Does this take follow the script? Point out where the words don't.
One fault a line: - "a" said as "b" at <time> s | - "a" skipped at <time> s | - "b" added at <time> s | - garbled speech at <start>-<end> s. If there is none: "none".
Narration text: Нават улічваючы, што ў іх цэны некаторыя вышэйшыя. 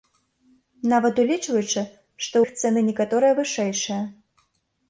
- "ў" skipped at 2.4 s